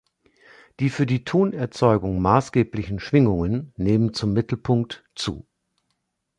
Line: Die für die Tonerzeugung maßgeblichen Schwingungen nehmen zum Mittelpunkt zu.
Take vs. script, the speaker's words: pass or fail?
pass